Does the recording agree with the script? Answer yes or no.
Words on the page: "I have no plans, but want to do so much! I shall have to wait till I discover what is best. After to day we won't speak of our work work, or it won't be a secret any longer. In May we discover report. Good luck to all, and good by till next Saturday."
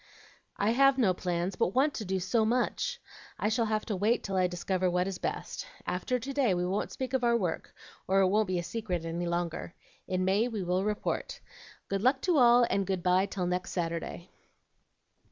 no